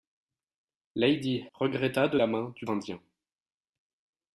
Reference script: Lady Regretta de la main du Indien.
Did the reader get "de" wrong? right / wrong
right